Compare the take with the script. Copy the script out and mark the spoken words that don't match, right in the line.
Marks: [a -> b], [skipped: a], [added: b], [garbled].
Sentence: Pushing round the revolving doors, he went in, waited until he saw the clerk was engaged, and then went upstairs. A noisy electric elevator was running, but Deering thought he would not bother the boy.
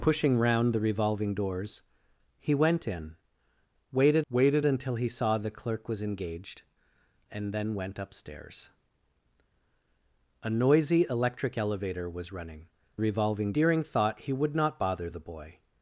Pushing round the revolving doors, he went in, waited [added: waited] until he saw the clerk was engaged, and then went upstairs. A noisy electric elevator was running, [but -> revolving] Deering thought he would not bother the boy.